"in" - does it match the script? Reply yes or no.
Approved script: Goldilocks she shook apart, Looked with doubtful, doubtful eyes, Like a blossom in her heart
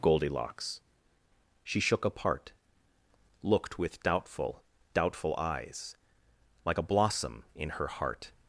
yes